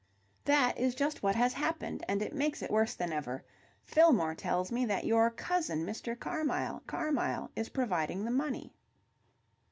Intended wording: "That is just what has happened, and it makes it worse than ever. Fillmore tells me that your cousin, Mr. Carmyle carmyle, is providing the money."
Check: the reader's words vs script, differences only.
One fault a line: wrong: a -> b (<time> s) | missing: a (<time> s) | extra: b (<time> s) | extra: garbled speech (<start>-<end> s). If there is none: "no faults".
no faults